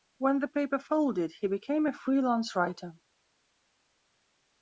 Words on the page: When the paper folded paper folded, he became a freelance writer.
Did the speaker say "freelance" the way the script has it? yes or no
yes